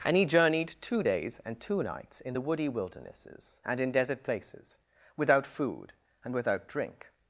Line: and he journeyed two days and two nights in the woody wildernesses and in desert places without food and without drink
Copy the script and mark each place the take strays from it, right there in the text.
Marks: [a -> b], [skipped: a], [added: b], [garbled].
and he journeyed two days and two nights in the woody wildernesses and in desert places without food and without drink